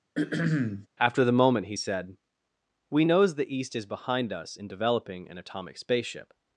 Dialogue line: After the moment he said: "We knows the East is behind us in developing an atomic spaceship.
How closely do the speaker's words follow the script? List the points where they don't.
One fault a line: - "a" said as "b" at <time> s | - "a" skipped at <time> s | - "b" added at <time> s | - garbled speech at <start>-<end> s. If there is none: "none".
none